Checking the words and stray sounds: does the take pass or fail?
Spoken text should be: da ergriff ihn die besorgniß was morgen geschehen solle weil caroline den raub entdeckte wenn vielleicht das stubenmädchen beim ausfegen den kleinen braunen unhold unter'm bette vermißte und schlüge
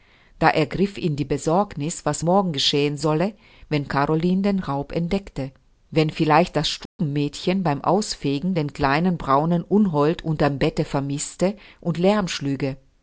fail